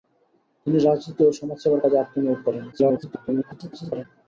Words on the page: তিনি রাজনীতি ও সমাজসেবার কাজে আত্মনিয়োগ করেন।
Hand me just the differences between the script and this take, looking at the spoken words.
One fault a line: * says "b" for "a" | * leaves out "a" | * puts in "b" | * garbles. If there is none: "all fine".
* garbles